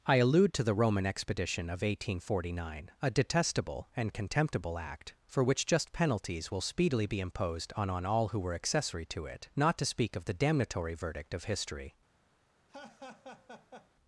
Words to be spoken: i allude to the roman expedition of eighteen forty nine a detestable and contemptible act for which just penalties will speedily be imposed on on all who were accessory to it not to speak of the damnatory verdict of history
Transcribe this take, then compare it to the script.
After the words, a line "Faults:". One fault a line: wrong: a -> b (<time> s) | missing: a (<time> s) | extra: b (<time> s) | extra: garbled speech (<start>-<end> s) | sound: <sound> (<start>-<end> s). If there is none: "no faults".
i allude to the roman expedition of eighteen forty nine a detestable and contemptible act for which just penalties will speedily be imposed on on all who were accessory to it not to speak of the damnatory verdict of history
Faults:
sound: laugh (12.7-13.9 s)